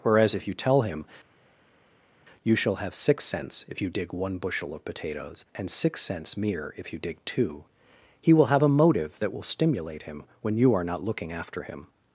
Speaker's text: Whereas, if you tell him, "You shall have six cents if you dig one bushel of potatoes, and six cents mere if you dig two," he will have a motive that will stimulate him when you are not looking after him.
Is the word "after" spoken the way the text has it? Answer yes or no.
yes